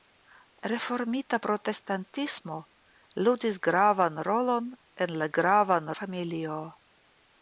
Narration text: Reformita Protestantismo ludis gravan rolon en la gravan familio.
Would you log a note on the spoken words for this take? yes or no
no